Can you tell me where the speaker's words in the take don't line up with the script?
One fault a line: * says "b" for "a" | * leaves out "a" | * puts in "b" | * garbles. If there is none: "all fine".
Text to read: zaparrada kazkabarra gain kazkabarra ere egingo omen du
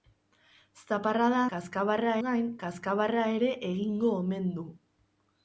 all fine